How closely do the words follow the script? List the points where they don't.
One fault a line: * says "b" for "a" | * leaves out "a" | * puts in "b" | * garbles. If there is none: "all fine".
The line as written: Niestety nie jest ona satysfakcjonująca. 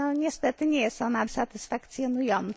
all fine